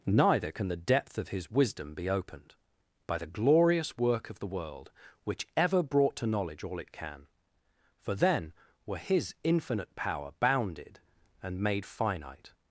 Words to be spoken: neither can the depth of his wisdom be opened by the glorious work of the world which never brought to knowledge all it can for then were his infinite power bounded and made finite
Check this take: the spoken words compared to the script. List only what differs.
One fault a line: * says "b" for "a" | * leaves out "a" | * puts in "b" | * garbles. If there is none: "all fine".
* says "ever" for "never"